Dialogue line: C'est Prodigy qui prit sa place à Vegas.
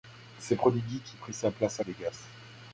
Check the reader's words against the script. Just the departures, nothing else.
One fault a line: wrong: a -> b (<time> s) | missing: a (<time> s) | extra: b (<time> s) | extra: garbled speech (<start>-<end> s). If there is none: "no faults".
no faults